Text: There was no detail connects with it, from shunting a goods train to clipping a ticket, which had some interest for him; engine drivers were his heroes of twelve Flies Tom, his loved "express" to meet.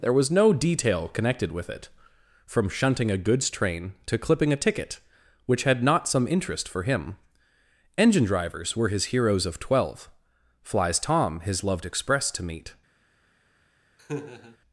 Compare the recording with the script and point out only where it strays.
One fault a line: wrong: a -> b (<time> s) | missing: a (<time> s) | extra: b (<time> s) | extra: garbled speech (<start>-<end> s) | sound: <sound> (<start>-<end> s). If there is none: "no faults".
wrong: connects -> connected (1.1 s)
extra: not (5.8 s)
sound: laugh (14.0-14.6 s)